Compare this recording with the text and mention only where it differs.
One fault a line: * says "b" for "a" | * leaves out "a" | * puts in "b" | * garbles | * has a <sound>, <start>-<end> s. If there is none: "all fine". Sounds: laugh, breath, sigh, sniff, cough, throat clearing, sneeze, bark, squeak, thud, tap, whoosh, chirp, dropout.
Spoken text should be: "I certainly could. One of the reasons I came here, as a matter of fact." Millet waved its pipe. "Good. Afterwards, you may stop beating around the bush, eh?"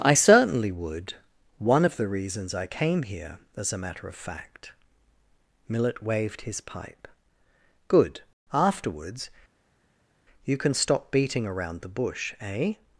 * says "would" for "could"
* says "his" for "its"
* says "can" for "may"